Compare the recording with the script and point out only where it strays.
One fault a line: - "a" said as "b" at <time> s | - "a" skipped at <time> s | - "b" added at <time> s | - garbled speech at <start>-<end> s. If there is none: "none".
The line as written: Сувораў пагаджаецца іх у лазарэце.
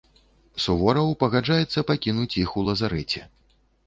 - "пакінуць" added at 1.9 s